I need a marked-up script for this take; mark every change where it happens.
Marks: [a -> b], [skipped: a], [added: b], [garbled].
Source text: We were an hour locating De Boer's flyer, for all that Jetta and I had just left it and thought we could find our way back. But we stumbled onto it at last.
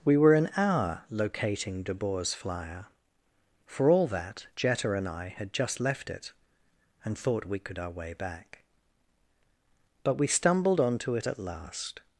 We were an hour locating De Boer's flyer, for all that Jetta and I had just left it and thought we could [skipped: find] our way back. But we stumbled onto it at last.